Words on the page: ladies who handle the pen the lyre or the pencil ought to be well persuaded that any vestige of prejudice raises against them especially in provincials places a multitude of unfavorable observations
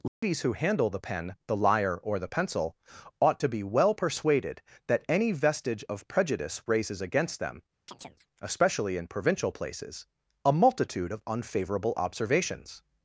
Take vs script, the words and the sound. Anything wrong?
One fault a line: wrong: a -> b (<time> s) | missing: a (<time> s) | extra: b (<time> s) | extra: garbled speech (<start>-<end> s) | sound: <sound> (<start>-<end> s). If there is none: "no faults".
sound: dropout (0.1-0.2 s)
sound: chirp (7.9-8.3 s)
wrong: provincials -> provincial (9.1 s)